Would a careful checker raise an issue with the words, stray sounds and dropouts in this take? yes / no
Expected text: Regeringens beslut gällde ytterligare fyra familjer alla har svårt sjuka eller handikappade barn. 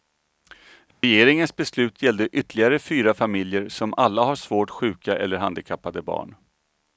yes